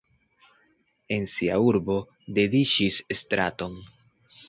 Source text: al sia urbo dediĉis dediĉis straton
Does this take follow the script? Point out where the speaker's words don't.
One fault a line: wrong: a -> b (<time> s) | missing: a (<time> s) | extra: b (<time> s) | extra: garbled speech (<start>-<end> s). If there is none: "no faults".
wrong: al -> en (1.2 s)
missing: dediĉis (3.0 s)